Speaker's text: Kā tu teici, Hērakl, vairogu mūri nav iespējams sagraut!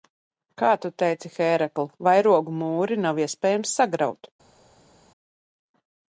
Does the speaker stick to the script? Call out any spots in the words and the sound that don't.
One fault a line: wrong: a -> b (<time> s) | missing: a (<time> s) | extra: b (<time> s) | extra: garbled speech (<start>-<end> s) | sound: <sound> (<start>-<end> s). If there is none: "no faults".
no faults